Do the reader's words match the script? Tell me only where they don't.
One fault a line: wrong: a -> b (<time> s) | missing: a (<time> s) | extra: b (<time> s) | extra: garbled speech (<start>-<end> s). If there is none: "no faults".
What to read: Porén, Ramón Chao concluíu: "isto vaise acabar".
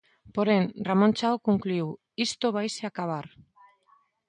no faults